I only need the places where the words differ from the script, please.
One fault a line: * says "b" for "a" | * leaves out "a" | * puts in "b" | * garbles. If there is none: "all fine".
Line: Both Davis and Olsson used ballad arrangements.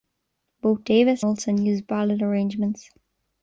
* leaves out "and"